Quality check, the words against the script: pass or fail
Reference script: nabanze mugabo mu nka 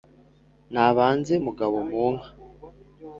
pass